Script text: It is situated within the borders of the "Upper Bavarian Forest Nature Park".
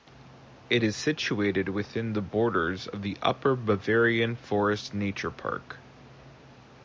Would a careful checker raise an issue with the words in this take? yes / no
no